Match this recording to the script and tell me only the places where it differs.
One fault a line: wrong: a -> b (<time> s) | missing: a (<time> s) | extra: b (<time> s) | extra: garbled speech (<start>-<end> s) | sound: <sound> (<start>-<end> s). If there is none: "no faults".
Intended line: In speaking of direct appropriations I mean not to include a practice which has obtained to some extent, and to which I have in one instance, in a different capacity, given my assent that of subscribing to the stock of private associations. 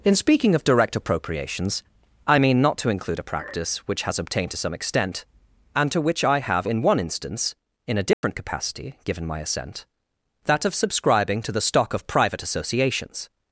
sound: dropout (8.1-8.2 s)